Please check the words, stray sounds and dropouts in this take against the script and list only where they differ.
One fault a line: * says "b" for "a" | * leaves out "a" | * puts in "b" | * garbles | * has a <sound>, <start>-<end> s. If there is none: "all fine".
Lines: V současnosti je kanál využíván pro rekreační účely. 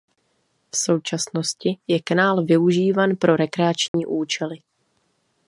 * has a dropout, 3.9-3.9 s